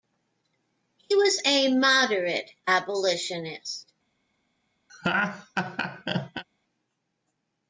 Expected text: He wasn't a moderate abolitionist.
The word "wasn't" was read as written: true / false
false